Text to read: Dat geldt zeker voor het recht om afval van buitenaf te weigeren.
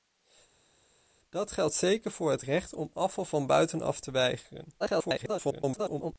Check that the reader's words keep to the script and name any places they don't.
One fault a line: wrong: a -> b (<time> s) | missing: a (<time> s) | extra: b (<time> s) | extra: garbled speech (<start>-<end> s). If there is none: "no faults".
extra: garbled speech (4.8-6.1 s)